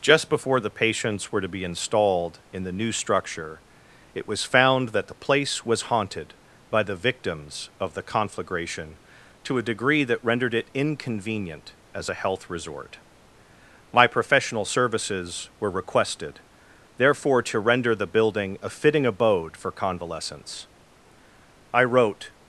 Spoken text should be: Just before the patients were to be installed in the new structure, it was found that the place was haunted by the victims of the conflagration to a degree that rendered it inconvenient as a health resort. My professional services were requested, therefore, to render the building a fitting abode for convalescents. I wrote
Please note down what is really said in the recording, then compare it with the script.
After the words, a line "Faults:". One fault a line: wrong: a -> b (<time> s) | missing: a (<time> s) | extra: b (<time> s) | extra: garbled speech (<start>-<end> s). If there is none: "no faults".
Just before the patients were to be installed in the new structure, it was found that the place was haunted by the victims of the conflagration to a degree that rendered it inconvenient as a health resort. My professional services were requested, therefore, to render the building a fitting abode for convalescents. I wrote
Faults:
no faults